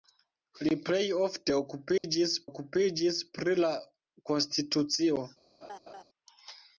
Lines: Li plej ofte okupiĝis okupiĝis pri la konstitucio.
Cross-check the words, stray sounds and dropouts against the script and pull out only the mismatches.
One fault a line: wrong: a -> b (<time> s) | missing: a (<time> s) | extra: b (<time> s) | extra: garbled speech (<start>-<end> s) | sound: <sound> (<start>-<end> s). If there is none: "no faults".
sound: dropout (2.0-2.0 s)
sound: laugh (5.6-6.0 s)